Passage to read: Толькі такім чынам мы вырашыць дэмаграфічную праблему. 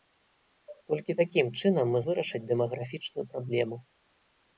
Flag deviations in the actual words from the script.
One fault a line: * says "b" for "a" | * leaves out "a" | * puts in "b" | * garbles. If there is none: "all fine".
all fine